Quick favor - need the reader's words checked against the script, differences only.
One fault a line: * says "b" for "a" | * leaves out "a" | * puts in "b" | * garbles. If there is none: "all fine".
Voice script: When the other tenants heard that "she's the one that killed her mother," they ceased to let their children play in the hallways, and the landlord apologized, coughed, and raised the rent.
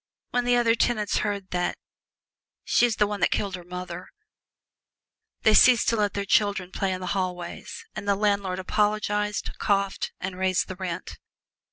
all fine